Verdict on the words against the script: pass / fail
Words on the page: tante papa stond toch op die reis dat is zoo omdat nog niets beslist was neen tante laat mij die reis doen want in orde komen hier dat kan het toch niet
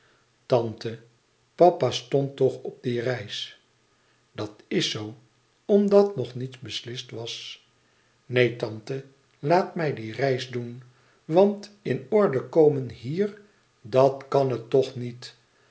pass